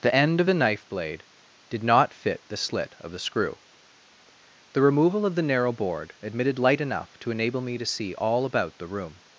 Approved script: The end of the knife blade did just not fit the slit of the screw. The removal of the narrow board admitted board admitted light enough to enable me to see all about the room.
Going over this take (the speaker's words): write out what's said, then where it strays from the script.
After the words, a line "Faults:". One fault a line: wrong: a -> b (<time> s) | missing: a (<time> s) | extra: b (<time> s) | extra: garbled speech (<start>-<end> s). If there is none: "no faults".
The end of the knife blade did not fit the slit of the screw. The removal of the narrow board admitted light enough to enable me to see all about the room.
Faults:
missing: just (1.8 s)
missing: board admitted (6.6 s)